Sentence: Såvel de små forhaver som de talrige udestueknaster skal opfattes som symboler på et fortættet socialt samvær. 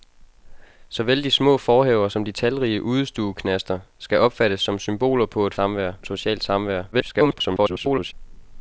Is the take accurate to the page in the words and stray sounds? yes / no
no